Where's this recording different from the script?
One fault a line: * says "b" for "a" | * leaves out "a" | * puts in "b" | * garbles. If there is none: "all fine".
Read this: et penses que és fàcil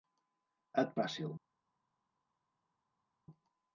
* leaves out "penses que és"